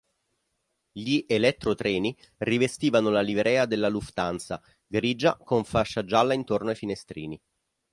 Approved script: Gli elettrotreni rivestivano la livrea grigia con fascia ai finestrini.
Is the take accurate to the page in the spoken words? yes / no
no